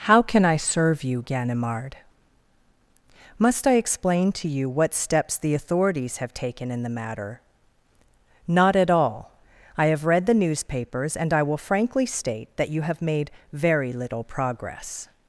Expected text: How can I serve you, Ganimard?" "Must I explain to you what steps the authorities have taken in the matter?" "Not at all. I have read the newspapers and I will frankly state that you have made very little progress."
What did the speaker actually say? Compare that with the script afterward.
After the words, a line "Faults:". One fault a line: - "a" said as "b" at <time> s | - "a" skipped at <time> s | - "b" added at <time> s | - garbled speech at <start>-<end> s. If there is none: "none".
How can I serve you, Ganimard?" "Must I explain to you what steps the authorities have taken in the matter?" "Not at all. I have read the newspapers and I will frankly state that you have made very little progress."
Faults:
none